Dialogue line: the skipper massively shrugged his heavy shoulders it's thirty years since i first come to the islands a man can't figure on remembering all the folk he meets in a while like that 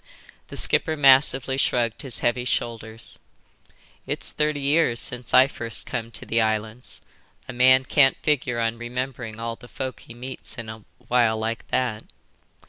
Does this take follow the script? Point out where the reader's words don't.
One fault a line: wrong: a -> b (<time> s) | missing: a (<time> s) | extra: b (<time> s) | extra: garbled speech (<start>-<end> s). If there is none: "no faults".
no faults